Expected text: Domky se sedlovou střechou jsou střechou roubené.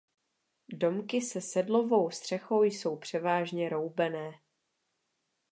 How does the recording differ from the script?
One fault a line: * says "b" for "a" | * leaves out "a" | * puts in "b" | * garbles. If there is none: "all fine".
* says "převážně" for "střechou"